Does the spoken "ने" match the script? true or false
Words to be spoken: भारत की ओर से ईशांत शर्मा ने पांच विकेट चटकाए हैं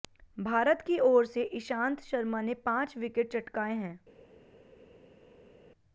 true